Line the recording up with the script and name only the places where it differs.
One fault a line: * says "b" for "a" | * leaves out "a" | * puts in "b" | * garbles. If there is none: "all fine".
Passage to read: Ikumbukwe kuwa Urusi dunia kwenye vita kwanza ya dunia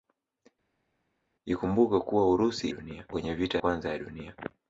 all fine